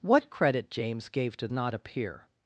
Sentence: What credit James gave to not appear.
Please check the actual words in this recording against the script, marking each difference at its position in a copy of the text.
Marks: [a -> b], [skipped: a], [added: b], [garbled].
What credit James gave to not appear.